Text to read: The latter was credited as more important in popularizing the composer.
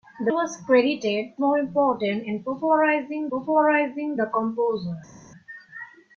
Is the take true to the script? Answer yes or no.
no